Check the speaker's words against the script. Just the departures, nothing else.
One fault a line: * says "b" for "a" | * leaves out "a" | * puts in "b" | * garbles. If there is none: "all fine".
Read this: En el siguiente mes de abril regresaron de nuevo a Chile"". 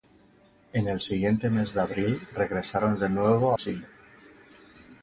all fine